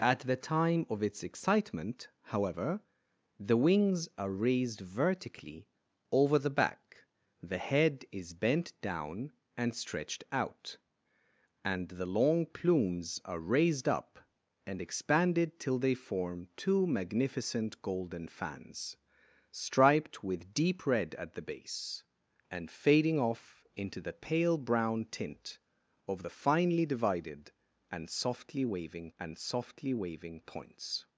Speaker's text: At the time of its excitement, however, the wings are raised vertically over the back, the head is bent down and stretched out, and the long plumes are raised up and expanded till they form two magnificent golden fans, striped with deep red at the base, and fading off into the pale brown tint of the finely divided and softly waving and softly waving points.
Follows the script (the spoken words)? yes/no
yes